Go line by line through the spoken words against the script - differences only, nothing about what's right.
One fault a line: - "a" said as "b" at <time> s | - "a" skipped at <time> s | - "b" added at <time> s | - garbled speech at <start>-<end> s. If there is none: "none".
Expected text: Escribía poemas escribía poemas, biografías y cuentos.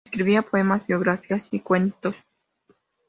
- "escribía poemas" skipped at 0.8 s